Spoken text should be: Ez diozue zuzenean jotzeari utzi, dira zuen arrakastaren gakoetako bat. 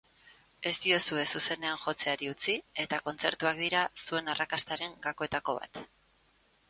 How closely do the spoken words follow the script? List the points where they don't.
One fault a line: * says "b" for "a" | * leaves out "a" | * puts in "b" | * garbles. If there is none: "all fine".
* puts in "eta kontzertuak"